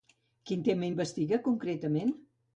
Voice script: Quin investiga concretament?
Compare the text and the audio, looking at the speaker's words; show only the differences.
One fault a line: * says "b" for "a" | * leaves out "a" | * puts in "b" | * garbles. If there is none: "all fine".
* puts in "tema"